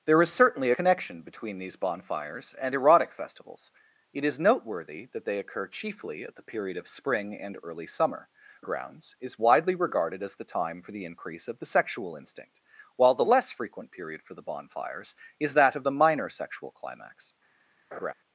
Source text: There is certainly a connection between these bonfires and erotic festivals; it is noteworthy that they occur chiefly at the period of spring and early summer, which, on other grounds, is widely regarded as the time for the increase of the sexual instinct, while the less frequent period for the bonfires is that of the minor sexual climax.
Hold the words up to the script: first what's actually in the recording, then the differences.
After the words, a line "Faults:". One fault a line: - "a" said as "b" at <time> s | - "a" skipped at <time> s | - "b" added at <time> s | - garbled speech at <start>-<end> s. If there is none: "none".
There is certainly connection between these bonfires and erotic festivals; it is noteworthy that they occur chiefly at the period of spring and early summer, grounds, is widely regarded as the time for the increase of the sexual instinct, while the less frequent period for the bonfires is that of the minor sexual climax.
Faults:
- "a" skipped at 0.7 s
- "which on other" skipped at 8.3 s